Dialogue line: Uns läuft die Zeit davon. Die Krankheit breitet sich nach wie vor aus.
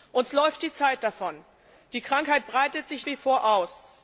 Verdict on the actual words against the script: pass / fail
fail